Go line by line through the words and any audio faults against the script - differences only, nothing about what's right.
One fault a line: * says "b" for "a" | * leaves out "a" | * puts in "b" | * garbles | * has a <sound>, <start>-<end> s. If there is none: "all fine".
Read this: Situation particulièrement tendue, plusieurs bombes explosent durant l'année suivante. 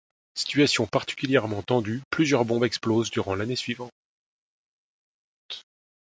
all fine